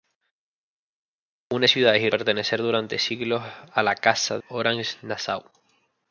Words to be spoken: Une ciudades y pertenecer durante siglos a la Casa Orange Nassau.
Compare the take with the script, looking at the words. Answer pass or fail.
pass